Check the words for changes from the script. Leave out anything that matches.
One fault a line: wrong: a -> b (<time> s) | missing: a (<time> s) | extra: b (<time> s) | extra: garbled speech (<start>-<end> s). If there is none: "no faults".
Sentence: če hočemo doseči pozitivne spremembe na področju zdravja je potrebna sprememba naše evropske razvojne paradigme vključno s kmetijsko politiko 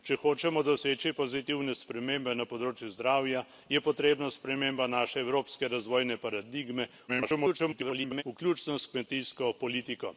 extra: garbled speech (7.1-8.2 s)